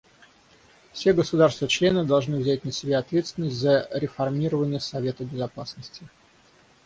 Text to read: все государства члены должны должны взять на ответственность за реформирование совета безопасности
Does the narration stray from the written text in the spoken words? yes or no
yes